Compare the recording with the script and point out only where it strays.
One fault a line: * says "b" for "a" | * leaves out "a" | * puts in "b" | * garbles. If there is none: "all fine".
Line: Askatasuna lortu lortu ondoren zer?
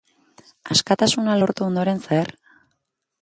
* leaves out "lortu"